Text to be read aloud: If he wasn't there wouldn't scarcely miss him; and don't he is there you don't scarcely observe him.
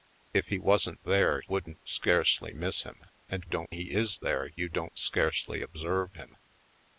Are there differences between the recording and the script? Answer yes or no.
no